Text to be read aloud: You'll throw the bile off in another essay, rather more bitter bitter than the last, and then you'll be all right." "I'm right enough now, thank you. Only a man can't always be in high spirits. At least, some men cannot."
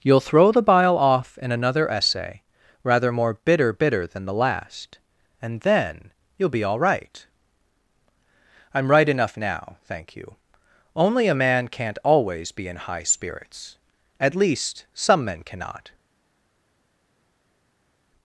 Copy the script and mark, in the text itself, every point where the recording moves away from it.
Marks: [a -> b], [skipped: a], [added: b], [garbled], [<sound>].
You'll throw the bile off in another essay, rather more bitter bitter than the last, and then you'll be all right." "I'm right enough now, thank you. Only a man can't always be in high spirits. At least, some men cannot."